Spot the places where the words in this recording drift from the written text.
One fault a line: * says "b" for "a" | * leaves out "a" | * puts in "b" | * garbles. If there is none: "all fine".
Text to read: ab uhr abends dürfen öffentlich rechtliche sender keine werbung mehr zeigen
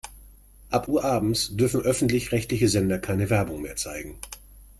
all fine